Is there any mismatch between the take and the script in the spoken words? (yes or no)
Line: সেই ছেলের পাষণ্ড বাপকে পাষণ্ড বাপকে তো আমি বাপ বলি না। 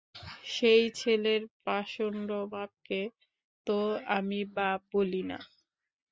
yes